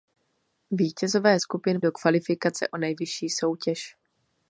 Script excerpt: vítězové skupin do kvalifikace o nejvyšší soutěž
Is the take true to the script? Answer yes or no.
yes